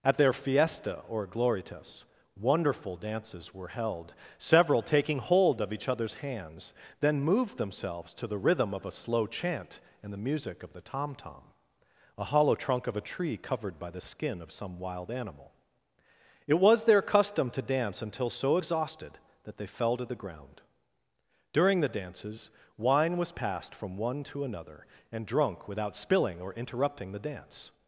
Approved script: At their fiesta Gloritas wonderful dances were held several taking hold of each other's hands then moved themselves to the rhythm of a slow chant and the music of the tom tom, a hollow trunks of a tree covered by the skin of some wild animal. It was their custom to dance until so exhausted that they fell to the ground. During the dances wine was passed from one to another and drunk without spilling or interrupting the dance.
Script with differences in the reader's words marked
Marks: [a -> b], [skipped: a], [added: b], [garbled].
At their fiesta [added: or] Gloritas wonderful dances were held several taking hold of each other's hands then moved themselves to the rhythm of a slow chant and the music of the tom tom, a hollow [trunks -> trunk] of a tree covered by the skin of some wild animal. It was their custom to dance until so exhausted that they fell to the ground. During the dances wine was passed from one to another and drunk without spilling or interrupting the dance.